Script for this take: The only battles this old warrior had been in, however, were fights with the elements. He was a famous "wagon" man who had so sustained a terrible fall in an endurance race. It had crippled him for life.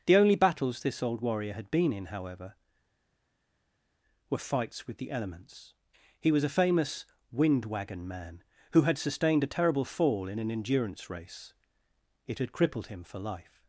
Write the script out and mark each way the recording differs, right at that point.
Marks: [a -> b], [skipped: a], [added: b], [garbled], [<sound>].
The only battles this old warrior had been in, however, were fights with the elements. He was a famous [added: wind] "wagon" man who had [skipped: so] sustained a terrible fall in an endurance race. It had crippled him for life.